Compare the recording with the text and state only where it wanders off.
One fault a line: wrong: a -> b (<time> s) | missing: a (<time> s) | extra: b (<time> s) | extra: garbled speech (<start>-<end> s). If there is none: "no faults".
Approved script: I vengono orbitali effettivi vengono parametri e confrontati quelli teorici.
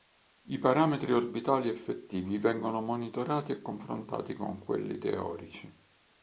wrong: vengono -> parametri (0.6 s)
wrong: parametri -> monitorati (2.8 s)
extra: con (4.3 s)